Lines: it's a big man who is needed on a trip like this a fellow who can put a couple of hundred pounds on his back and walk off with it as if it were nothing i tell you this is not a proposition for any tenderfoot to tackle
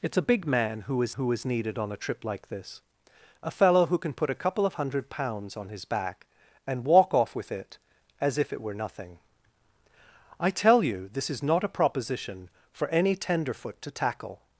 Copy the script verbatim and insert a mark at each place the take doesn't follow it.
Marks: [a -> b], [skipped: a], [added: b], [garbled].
it's a big man who is [added: who is] needed on a trip like this a fellow who can put a couple of hundred pounds on his back and walk off with it as if it were nothing i tell you this is not a proposition for any tenderfoot to tackle